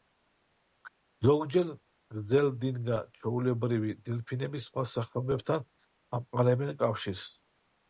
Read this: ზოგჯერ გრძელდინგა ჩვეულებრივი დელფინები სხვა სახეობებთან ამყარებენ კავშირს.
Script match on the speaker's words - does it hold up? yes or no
yes